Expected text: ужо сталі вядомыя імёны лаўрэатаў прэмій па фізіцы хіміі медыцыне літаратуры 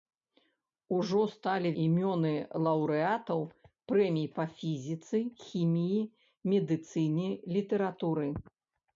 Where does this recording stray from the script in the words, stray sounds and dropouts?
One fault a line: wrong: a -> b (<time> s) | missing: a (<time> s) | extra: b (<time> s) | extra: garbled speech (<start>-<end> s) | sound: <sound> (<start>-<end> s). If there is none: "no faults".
missing: вядомыя (1.7 s)